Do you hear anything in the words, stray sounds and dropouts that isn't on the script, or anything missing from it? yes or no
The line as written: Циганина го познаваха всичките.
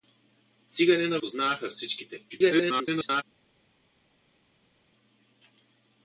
yes